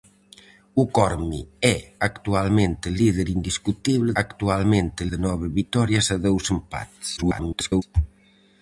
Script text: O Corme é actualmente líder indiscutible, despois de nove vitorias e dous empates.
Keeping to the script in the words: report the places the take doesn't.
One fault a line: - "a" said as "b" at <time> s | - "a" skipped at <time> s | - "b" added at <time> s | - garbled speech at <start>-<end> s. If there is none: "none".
- "despois" said as "actualmente" at 4.2 s
- garbled speech at 7.2-7.8 s